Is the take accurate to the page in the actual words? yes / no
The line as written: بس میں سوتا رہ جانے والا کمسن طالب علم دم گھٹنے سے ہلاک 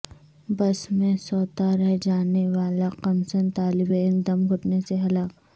yes